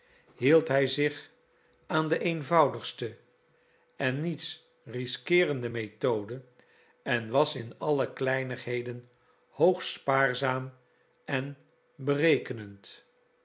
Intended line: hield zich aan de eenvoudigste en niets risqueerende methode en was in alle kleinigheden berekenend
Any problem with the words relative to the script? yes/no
yes